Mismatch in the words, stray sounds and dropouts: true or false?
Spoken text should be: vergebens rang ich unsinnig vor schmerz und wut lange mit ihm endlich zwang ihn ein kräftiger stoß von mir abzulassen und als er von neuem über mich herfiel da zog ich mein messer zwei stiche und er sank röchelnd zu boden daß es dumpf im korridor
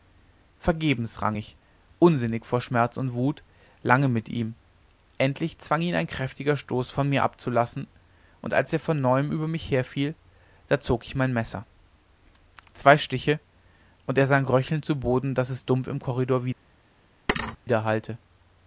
true